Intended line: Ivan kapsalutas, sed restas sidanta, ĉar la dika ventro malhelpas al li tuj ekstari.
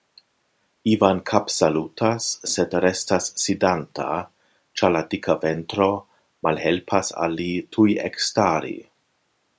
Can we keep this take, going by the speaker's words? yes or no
yes